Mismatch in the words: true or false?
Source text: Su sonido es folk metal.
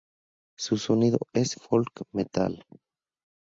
false